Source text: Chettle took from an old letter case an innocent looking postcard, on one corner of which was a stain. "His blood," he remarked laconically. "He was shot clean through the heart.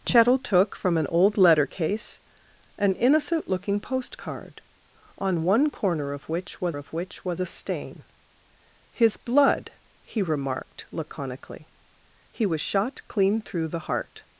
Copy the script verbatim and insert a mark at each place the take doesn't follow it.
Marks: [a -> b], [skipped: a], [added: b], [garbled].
Chettle took from an old letter case an innocent looking postcard, on one corner of which was [added: of which was] a stain. "His blood," he remarked laconically. "He was shot clean through the heart.